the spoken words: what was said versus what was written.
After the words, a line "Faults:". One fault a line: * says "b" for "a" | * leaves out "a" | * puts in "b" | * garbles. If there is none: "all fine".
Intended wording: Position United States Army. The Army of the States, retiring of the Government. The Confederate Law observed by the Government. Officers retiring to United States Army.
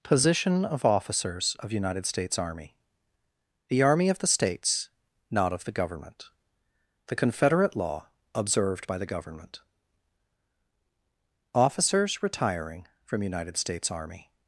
Position of Officers of United States Army. The Army of the States, not of the Government. The Confederate Law observed by the Government. Officers retiring from United States Army.
Faults:
* puts in "of Officers of"
* says "not" for "retiring"
* says "from" for "to"